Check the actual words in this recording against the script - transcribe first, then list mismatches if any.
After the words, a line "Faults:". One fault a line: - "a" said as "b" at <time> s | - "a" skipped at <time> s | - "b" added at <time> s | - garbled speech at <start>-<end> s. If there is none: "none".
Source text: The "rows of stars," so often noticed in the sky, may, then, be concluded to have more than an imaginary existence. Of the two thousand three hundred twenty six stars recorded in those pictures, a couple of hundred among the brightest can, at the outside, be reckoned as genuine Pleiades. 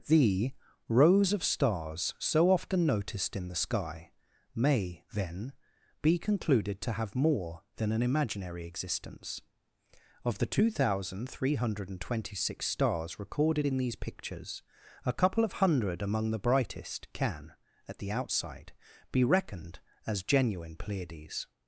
The "rows of stars," so often noticed in the sky, may, then, be concluded to have more than an imaginary existence. Of the two thousand three hundred twenty six stars recorded in these pictures, a couple of hundred among the brightest can, at the outside, be reckoned as genuine Pleiades.
Faults:
- "those" said as "these" at 13.8 s